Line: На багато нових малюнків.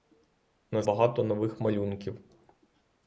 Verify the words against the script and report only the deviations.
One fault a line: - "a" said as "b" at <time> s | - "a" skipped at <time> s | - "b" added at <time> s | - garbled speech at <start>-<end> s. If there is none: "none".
none